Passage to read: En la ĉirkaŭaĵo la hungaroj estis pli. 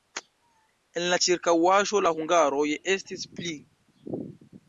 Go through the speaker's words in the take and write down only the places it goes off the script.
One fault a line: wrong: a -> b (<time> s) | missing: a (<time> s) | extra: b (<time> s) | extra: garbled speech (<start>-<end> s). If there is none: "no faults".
no faults